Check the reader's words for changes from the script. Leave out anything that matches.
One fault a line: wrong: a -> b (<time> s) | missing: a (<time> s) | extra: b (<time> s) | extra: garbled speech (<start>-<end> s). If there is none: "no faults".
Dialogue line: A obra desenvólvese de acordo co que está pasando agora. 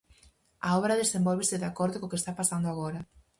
no faults